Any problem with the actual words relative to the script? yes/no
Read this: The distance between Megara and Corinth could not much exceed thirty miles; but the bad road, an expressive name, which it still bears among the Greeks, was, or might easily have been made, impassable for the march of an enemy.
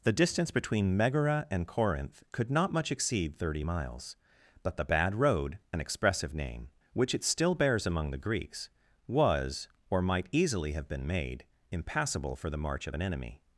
no